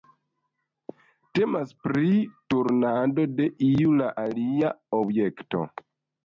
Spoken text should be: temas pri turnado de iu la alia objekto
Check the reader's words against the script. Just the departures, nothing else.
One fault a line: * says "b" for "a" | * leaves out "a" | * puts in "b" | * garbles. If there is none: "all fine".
all fine